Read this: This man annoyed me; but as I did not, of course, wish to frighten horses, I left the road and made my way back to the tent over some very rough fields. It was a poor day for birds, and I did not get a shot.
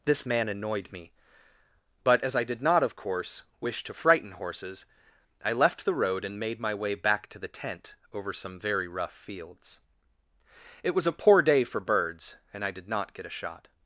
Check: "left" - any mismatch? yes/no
no